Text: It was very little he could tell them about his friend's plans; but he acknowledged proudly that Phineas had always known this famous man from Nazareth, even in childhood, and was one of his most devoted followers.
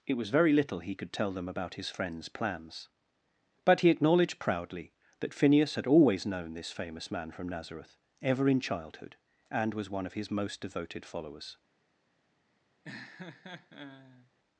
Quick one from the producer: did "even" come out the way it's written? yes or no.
no